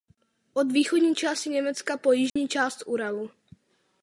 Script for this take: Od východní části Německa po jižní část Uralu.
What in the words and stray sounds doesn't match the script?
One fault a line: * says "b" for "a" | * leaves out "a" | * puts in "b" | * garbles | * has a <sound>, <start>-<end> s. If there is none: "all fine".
* has a dropout, 2.3-2.4 s